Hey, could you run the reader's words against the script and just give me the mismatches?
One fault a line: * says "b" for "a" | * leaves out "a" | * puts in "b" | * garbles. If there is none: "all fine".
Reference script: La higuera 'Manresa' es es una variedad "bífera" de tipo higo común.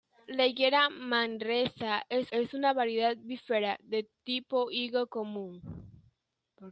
all fine